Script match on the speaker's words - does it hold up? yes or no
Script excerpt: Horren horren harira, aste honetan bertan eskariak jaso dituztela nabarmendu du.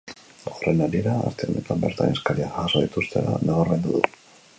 no